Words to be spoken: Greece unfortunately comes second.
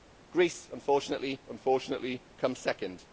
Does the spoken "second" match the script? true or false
true